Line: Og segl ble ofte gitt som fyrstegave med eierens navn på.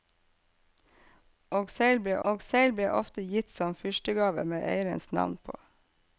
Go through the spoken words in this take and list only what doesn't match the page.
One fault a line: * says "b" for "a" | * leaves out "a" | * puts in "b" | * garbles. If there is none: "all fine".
* puts in "og segl ble"